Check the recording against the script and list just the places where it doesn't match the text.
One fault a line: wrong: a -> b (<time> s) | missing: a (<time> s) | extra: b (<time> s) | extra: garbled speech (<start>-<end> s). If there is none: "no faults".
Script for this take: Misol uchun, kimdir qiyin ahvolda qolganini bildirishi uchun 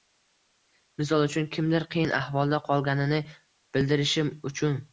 no faults